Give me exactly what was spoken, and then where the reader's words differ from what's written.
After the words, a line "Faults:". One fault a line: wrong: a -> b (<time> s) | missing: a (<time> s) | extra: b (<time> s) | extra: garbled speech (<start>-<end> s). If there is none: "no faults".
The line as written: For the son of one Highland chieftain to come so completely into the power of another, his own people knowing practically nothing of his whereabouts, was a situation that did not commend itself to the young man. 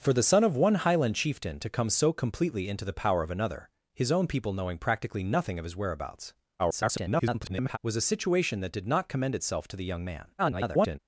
For the son of one Highland chieftain to come so completely into the power of another, his own people knowing practically nothing of his whereabouts, [garbled] was a situation that did not commend itself to the young man. [garbled]
Faults:
extra: garbled speech (6.6-7.8 s)
extra: garbled speech (10.4-11.0 s)